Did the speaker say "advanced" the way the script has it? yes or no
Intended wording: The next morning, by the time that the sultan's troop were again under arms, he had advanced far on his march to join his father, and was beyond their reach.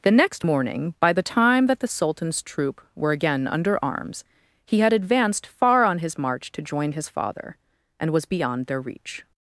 yes